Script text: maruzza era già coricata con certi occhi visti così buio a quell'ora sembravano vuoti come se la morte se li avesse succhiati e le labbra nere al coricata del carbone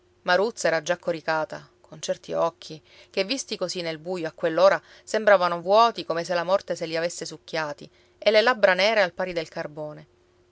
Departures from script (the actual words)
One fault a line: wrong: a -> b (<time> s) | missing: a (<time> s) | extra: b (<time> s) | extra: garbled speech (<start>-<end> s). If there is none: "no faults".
extra: che (3.1 s)
extra: nel (3.8 s)
wrong: coricata -> pari (9.1 s)